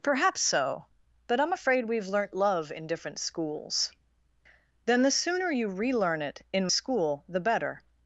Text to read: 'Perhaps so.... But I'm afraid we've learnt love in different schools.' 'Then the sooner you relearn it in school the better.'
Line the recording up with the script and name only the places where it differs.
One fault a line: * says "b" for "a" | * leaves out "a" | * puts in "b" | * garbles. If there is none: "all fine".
all fine